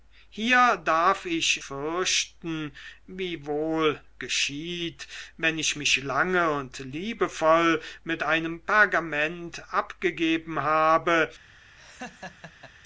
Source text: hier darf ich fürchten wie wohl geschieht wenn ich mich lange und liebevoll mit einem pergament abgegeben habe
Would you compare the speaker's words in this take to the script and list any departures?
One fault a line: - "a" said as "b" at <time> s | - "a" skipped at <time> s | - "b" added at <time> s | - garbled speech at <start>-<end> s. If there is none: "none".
none